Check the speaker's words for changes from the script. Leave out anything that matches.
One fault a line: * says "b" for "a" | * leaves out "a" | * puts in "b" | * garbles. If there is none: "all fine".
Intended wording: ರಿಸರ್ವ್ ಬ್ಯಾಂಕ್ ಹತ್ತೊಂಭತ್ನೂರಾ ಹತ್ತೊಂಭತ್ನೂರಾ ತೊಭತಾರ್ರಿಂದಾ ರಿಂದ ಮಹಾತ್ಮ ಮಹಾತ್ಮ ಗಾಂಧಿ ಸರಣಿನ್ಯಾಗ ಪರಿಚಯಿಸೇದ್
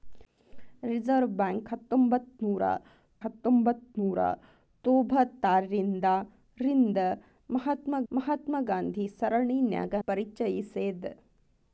all fine